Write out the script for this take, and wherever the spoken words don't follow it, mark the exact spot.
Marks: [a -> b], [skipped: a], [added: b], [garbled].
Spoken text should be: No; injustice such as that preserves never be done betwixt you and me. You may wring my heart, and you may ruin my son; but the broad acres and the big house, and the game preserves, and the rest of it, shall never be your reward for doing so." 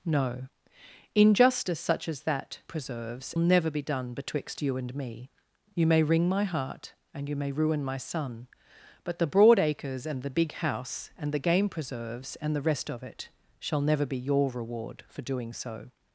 No; injustice such as that preserves never be done betwixt you and me. You may wring my heart, and you may ruin my son; but the broad acres and the big house, and the game preserves, and the rest of it, shall never be your reward for doing so."